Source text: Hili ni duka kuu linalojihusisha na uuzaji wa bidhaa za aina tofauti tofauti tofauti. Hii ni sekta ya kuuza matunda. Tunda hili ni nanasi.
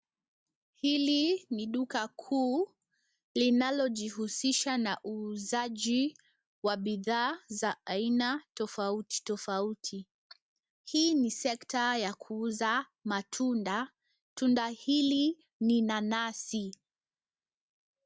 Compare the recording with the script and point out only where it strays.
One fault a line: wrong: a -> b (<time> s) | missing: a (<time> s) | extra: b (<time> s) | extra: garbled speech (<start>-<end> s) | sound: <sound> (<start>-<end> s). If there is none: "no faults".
missing: tofauti (10.1 s)